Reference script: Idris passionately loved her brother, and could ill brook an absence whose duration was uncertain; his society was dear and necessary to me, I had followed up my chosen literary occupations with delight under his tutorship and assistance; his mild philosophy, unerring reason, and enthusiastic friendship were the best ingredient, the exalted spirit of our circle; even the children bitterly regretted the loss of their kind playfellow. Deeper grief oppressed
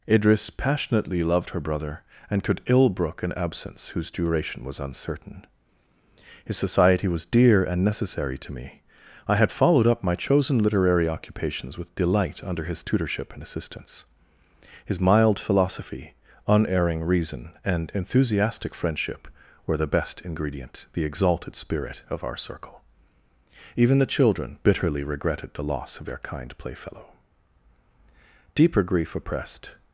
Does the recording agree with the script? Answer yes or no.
yes